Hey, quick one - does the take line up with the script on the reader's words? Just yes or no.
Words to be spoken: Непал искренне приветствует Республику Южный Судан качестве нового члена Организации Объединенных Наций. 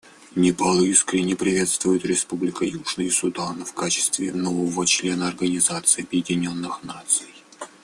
no